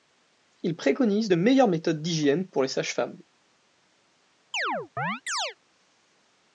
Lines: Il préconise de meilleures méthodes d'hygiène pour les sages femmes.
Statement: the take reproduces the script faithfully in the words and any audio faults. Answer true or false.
false